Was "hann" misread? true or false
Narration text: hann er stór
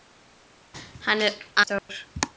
false